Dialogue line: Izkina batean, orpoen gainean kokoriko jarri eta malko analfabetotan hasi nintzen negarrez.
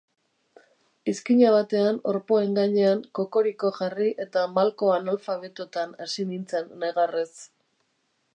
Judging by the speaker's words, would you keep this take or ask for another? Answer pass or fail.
pass